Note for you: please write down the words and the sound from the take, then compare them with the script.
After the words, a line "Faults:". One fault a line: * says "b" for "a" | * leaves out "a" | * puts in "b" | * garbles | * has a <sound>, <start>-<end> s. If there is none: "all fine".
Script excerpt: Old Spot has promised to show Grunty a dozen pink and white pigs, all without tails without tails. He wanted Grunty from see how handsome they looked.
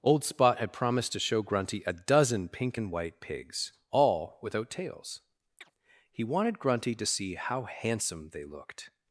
Old Spot had promised to show Grunty a dozen pink and white pigs, all without tails. He wanted Grunty to see how handsome they looked.
Faults:
* says "had" for "has"
* leaves out "without tails"
* has a chirp, 5.6-5.7 s
* says "to" for "from"